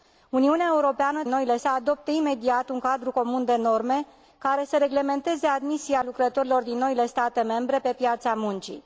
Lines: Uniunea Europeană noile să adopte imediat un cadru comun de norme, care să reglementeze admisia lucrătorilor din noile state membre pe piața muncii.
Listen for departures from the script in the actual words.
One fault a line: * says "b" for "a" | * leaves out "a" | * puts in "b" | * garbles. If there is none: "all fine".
all fine